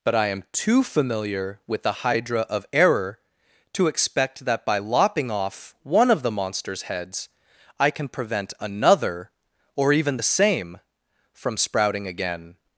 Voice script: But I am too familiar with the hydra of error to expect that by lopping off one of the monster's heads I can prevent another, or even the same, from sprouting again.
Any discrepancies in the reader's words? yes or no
no